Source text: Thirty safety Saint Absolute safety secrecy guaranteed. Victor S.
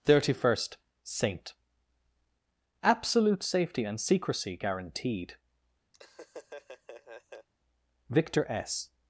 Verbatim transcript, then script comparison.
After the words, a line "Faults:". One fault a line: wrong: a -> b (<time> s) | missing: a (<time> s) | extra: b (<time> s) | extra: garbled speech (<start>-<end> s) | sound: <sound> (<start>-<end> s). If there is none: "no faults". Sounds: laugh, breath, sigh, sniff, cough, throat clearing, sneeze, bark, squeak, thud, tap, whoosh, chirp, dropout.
Thirty first Saint Absolute safety and secrecy guaranteed. Victor S.
Faults:
wrong: safety -> first (0.4 s)
extra: and (3.8 s)
sound: laugh (5.9-7.5 s)